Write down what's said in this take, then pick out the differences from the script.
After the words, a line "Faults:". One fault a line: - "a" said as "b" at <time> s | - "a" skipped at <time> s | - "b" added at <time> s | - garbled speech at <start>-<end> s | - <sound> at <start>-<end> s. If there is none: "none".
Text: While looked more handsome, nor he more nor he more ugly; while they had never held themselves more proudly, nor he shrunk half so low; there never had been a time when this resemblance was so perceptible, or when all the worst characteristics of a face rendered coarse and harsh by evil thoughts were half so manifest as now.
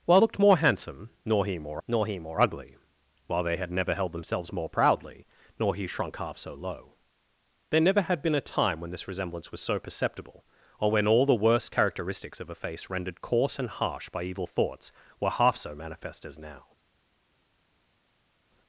While looked more handsome, nor he more nor he more ugly; while they had never held themselves more proudly, nor he shrunk half so low; there never had been a time when this resemblance was so perceptible, or when all the worst characteristics of a face rendered coarse and harsh by evil thoughts were half so manifest as now.
Faults:
none